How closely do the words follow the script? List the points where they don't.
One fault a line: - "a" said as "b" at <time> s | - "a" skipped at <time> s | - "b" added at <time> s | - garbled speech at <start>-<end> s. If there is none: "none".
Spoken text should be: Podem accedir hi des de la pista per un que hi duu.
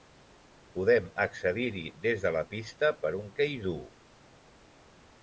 none